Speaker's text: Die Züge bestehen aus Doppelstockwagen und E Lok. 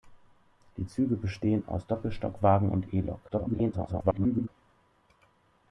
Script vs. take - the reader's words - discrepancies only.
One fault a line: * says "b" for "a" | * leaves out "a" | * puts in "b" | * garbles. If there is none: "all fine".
* garbles